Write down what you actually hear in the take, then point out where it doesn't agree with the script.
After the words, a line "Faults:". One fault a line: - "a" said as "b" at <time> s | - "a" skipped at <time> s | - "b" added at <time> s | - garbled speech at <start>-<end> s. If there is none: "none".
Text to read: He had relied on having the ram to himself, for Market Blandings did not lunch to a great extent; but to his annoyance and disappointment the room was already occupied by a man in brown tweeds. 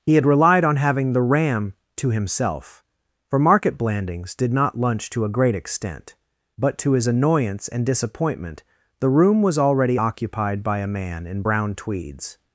He had relied on having the ram to himself, for Market Blandings did not lunch to a great extent; but to his annoyance and disappointment the room was already occupied by a man in brown tweeds.
Faults:
none